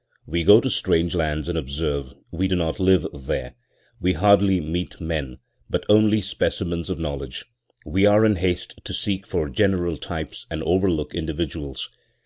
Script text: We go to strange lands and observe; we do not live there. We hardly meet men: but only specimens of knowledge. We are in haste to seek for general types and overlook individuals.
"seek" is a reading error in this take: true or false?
false